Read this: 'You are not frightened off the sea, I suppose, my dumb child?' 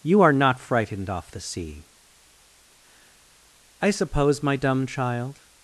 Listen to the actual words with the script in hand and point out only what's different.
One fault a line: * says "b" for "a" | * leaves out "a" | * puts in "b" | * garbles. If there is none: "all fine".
all fine